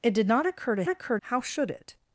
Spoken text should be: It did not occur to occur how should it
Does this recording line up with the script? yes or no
yes